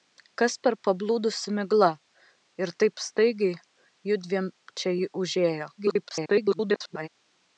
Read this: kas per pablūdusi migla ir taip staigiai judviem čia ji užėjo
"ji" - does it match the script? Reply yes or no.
yes